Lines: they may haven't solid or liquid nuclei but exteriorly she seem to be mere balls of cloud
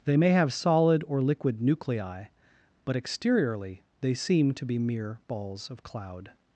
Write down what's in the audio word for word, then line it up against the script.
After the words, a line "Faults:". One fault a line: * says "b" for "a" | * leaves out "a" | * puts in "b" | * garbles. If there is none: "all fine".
they may have solid or liquid nuclei but exteriorly they seem to be mere balls of cloud
Faults:
* says "have" for "haven't"
* says "they" for "she"